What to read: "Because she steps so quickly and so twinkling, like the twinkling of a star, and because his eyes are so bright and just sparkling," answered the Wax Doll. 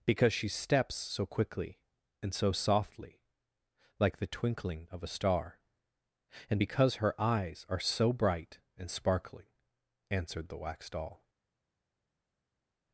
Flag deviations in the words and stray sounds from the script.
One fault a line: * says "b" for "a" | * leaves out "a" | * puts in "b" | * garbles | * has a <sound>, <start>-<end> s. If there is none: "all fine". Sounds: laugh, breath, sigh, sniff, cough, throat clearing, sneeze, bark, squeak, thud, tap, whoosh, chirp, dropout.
* says "softly" for "twinkling"
* says "her" for "his"
* leaves out "just"